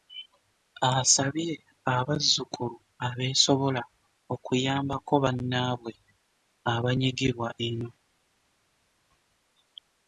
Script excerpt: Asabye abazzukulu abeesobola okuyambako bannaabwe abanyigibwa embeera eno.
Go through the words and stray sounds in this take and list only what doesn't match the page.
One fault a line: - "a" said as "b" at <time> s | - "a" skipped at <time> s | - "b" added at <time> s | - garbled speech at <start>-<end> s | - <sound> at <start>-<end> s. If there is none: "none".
- "embeera" skipped at 7.5 s